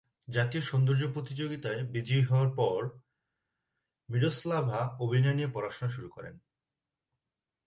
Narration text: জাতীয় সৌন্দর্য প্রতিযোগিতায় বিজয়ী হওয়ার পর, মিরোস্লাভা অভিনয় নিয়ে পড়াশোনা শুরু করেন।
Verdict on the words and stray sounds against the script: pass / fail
pass